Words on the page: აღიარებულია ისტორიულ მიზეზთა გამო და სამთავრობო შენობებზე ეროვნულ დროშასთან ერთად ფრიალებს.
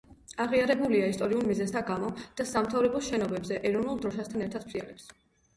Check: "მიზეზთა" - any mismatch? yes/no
no